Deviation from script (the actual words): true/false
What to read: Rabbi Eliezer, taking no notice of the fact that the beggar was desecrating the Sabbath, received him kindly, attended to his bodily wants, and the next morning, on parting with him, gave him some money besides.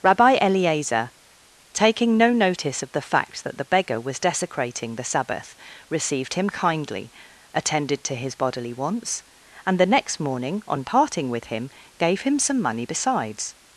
false